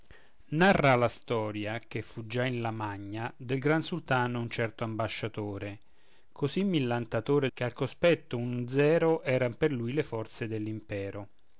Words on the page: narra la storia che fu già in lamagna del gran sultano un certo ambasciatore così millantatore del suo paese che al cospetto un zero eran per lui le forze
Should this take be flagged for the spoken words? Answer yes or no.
yes